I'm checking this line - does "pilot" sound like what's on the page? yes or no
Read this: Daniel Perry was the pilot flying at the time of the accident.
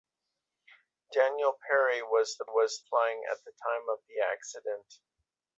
no